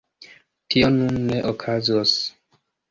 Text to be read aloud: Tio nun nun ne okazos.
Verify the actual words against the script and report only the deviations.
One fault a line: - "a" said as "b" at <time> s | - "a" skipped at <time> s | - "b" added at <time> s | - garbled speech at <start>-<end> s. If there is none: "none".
- "nun" skipped at 1.2 s